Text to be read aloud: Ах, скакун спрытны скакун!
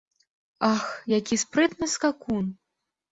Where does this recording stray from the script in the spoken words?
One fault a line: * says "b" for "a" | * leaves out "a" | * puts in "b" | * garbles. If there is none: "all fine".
* says "які" for "скакун"